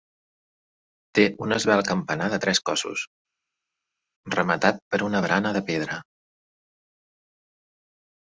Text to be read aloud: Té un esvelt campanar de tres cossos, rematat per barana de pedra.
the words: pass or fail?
fail